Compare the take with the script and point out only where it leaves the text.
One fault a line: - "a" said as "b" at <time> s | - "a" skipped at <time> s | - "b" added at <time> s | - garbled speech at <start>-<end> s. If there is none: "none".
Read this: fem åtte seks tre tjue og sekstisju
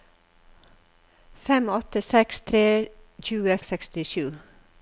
none